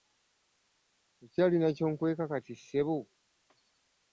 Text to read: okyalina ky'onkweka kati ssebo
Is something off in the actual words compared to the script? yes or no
no